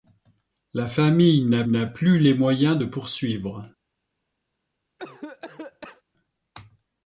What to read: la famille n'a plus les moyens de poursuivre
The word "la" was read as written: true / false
true